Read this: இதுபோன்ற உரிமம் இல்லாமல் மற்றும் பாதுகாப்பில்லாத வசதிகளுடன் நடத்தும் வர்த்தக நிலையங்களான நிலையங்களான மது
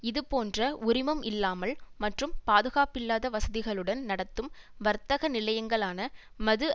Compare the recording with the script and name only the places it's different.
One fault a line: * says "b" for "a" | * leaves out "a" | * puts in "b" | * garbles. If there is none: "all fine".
* leaves out "நிலையங்களான"